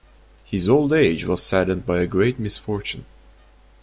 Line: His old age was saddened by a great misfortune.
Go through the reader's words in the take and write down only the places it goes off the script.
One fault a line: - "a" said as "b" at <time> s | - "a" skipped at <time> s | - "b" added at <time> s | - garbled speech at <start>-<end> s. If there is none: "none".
none